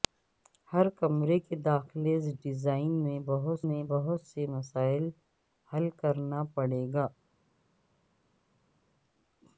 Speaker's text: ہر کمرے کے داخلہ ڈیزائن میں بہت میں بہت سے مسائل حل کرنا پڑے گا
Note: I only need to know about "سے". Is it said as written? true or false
true